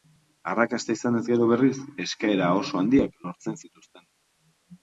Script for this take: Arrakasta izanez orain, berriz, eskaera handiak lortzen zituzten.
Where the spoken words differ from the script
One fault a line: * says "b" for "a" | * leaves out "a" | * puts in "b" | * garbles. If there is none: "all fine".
* says "gero" for "orain"
* puts in "oso"